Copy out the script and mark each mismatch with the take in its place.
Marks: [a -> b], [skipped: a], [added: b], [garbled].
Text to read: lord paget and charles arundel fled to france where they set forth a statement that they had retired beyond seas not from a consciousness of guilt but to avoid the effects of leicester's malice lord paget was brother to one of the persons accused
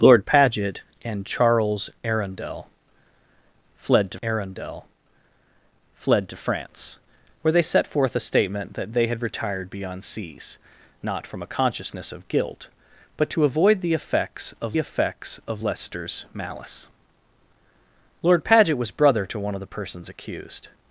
lord paget and charles arundel fled to [added: arundel fled to] france where they set forth a statement that they had retired beyond seas not from a consciousness of guilt but to avoid the effects of [added: effects of] leicester's malice lord paget was brother to one of the persons accused